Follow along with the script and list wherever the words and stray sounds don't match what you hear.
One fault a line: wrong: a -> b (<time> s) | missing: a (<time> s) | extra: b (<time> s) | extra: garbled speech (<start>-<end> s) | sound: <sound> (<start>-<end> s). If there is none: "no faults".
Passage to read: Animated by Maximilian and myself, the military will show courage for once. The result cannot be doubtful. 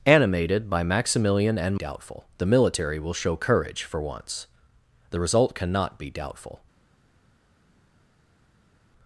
wrong: myself -> doubtful (1.8 s)